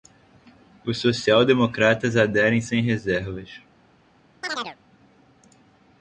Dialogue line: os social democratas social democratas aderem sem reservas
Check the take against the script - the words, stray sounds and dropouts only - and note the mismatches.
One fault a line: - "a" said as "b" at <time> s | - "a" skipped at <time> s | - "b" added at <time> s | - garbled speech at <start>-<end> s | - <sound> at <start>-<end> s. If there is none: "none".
- "social democratas" skipped at 2.1 s
- chirp at 4.4-4.8 s